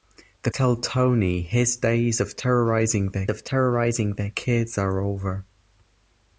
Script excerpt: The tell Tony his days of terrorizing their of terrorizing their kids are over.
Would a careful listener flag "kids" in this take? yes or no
no